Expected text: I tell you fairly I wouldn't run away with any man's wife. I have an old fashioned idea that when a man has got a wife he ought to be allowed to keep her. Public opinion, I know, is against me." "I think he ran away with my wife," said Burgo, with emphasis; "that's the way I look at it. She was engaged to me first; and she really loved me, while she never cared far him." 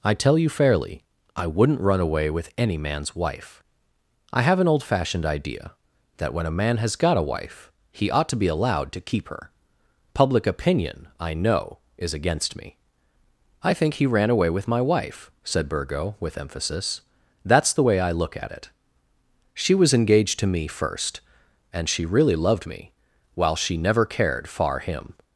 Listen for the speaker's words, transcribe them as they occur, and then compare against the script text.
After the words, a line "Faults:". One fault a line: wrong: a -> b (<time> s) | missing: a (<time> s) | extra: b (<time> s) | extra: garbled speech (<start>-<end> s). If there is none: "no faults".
I tell you fairly I wouldn't run away with any man's wife. I have an old fashioned idea that when a man has got a wife he ought to be allowed to keep her. Public opinion, I know, is against me." "I think he ran away with my wife," said Burgo, with emphasis; "that's the way I look at it. She was engaged to me first; and she really loved me, while she never cared far him."
Faults:
no faults